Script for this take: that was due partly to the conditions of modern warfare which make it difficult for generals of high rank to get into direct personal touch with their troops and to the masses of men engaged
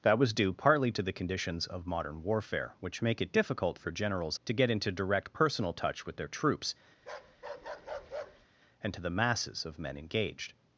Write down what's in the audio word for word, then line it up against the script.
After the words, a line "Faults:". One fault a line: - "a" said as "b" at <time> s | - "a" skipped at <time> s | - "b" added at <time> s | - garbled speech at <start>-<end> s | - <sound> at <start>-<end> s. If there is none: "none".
that was due partly to the conditions of modern warfare which make it difficult for generals to get into direct personal touch with their troops and to the masses of men engaged
Faults:
- "of high rank" skipped at 4.4 s
- bark at 7.0-8.5 s